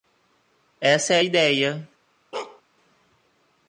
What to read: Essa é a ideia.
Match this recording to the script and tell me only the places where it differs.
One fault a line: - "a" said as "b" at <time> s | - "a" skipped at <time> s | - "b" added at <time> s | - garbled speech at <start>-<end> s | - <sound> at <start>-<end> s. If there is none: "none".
- bark at 2.3-2.6 s